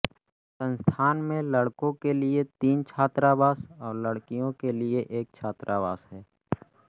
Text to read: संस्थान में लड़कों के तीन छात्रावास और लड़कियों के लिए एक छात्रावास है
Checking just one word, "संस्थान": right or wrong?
right